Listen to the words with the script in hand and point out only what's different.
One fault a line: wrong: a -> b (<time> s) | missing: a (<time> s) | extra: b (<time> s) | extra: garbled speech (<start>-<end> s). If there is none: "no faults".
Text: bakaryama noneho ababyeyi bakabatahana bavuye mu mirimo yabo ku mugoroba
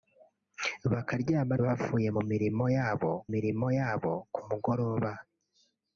wrong: noneho ababyeyi bakabatahana bavuye mu -> bavuye mu mirimo yabo (1.6 s)